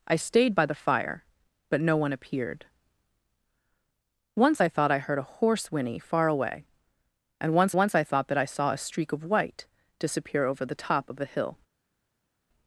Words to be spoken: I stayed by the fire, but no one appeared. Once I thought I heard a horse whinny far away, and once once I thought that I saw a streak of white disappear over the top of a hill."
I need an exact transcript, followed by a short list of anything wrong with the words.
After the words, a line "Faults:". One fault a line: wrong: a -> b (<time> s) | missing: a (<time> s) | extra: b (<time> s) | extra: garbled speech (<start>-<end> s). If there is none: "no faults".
I stayed by the fire, but no one appeared. Once I thought I heard a horse whinny far away, and once once I thought that I saw a streak of white disappear over the top of a hill."
Faults:
no faults